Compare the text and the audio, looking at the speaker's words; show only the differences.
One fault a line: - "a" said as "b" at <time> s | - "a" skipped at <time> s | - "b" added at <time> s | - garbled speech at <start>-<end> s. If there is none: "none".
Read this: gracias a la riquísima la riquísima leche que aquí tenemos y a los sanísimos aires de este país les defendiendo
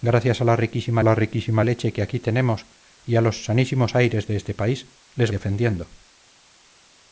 none